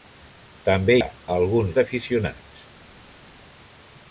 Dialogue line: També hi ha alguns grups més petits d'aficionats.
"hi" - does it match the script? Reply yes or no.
no